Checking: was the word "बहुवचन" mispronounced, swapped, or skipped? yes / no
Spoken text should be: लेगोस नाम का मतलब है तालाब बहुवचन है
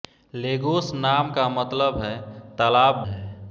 yes